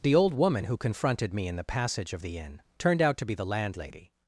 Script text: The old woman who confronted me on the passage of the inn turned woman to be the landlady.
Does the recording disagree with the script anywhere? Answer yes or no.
yes